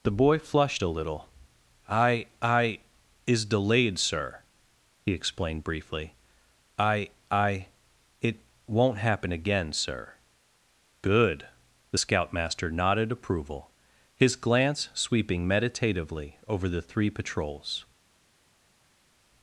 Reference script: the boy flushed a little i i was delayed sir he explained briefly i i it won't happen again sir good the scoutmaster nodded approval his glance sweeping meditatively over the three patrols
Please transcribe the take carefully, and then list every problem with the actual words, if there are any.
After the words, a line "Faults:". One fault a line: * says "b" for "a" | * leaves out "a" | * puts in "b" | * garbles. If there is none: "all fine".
the boy flushed a little i i is delayed sir he explained briefly i i it won't happen again sir good the scoutmaster nodded approval his glance sweeping meditatively over the three patrols
Faults:
* says "is" for "was"